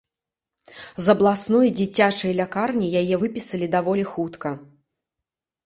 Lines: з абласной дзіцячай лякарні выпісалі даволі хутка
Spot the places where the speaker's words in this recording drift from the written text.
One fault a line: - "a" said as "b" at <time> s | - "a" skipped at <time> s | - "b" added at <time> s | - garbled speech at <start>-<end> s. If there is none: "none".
- "яе" added at 3.0 s